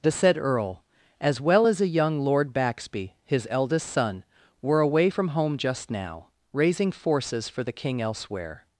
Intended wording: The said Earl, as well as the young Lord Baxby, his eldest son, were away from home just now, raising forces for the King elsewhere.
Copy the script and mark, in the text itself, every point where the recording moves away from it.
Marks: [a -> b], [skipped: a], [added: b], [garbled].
The said Earl, as well as [the -> a] young Lord Baxby, his eldest son, were away from home just now, raising forces for the King elsewhere.